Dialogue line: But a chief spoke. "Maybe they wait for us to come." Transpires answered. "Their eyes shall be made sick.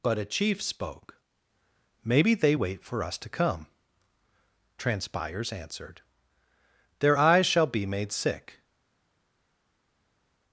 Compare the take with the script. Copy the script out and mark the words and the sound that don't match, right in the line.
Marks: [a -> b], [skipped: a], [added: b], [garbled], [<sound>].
But a chief spoke. "Maybe they wait for us to come." Transpires answered. "Their eyes shall be made sick.